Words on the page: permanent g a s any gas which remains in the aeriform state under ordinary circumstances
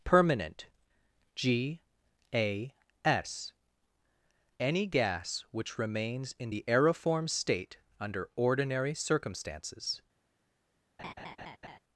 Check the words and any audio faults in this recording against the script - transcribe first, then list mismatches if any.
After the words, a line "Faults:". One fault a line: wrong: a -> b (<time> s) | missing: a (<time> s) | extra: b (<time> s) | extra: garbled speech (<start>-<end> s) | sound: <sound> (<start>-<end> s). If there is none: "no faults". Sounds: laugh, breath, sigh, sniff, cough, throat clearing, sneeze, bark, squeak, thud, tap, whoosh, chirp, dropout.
permanent g a s any gas which remains in the aeriform state under ordinary circumstances
Faults:
sound: laugh (11.0-11.8 s)